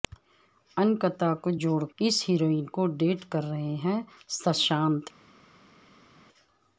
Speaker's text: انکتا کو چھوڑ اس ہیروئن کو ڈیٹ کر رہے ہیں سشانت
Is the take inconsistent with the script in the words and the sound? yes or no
no